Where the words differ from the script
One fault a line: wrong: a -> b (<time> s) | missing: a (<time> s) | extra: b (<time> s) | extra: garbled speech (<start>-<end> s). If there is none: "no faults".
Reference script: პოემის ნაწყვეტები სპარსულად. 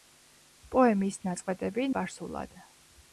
no faults